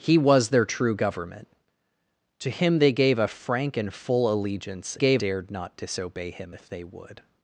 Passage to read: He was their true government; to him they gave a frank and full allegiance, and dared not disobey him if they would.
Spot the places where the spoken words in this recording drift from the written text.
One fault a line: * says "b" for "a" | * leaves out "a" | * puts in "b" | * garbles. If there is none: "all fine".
* says "gave" for "and"